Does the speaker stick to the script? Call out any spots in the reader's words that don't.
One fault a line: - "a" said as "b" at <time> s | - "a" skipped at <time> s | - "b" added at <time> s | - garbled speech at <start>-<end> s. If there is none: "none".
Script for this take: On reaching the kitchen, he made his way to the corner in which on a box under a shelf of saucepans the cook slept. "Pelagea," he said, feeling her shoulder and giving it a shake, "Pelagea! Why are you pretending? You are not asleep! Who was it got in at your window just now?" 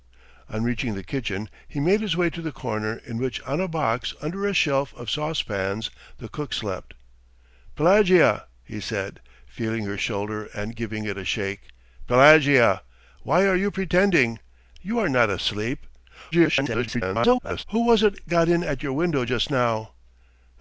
- garbled speech at 16.3-17.6 s